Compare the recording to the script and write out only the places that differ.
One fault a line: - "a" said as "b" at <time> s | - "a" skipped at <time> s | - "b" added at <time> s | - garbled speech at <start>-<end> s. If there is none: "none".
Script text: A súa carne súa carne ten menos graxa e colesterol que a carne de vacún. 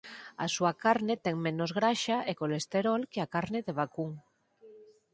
- "súa carne" skipped at 1.1 s